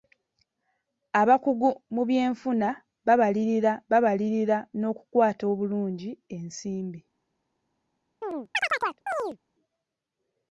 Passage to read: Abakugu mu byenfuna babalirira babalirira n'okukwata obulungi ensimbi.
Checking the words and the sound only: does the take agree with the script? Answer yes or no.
no